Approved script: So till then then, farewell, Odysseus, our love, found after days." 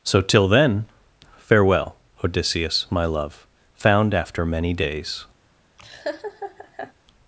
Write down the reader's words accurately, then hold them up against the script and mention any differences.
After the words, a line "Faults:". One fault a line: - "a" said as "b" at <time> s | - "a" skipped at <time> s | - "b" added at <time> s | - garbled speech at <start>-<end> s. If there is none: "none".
So till then, farewell, Odysseus, my love, found after many days."
Faults:
- "then" skipped at 0.8 s
- "our" said as "my" at 2.9 s
- "many" added at 4.4 s